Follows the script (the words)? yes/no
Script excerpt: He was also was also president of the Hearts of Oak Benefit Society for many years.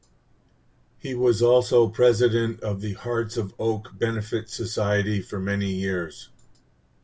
no